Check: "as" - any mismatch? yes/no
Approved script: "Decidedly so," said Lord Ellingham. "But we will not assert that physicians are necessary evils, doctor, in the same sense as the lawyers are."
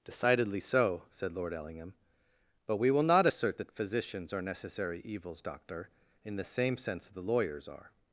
yes